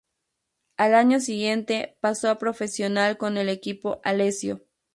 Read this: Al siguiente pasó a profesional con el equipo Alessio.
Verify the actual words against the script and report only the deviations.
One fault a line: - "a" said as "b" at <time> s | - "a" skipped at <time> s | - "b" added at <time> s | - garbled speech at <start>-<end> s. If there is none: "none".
- "año" added at 0.9 s